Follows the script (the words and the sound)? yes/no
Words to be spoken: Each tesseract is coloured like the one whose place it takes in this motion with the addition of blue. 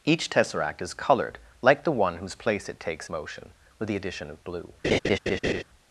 no